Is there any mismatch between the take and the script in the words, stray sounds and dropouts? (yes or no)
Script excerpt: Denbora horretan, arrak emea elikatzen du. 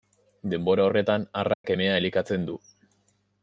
yes